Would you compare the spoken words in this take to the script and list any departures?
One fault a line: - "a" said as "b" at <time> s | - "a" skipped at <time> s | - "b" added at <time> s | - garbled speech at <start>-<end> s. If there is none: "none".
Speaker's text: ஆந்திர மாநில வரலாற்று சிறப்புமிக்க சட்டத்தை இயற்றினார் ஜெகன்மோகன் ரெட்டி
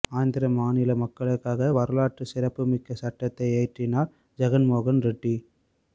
- "மக்களுக்காக" added at 1.0 s